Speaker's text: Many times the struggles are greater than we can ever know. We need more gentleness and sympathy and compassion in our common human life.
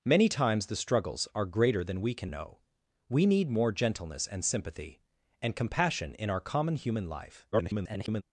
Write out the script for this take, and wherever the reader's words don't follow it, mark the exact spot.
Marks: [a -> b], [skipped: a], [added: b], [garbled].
Many times the struggles are greater than we can [skipped: ever] know. We need more gentleness and sympathy and compassion in our common human life. [garbled]